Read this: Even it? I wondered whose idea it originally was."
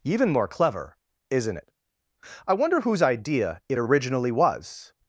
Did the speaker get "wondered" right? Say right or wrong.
wrong